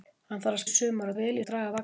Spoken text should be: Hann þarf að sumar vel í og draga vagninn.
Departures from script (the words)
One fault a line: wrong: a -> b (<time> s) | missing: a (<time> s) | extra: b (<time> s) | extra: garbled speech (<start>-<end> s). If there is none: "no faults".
no faults